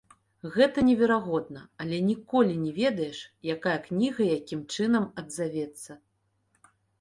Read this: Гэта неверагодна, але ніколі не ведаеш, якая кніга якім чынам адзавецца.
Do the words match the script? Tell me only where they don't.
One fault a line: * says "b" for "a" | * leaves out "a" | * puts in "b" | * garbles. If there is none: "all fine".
all fine